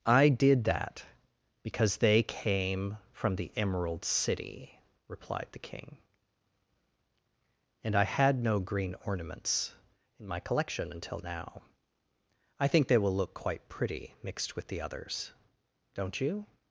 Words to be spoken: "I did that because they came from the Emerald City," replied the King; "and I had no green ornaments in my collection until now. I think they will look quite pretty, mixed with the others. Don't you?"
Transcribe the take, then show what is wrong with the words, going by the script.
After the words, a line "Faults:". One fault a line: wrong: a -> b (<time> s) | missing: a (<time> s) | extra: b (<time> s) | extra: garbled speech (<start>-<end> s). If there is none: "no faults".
"I did that because they came from the Emerald City," replied the King; "and I had no green ornaments in my collection until now. I think they will look quite pretty, mixed with the others. Don't you?"
Faults:
no faults